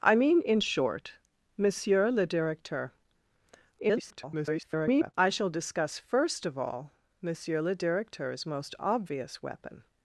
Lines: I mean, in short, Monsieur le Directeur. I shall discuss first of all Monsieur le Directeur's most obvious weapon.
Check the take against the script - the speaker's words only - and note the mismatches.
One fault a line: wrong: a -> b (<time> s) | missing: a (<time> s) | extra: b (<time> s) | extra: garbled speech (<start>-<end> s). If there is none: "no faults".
extra: garbled speech (3.8-5.1 s)